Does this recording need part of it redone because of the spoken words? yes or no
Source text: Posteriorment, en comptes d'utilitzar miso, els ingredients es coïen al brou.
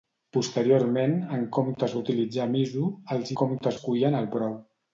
yes